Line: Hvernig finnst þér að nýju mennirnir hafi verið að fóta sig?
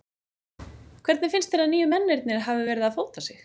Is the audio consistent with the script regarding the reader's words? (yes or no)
yes